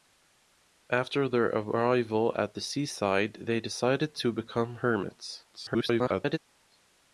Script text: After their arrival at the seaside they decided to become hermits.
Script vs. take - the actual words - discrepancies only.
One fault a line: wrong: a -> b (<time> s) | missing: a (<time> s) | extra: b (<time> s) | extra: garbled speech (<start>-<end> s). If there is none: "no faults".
extra: garbled speech (5.5-6.4 s)